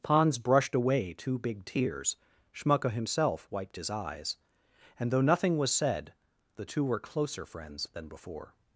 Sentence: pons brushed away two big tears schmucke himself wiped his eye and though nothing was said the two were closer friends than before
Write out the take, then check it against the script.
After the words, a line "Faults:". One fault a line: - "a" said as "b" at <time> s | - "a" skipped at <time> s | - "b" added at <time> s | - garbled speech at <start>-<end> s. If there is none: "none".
pons brushed away two big tears schmucke himself wiped his eyes and though nothing was said the two were closer friends than before
Faults:
- "eye" said as "eyes" at 3.9 s